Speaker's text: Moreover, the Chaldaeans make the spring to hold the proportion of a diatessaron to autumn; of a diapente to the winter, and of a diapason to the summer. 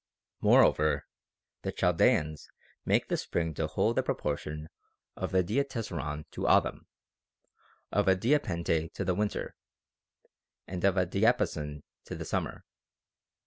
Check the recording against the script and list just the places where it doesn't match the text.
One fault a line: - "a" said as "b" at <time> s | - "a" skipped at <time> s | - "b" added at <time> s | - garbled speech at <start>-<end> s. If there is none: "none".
none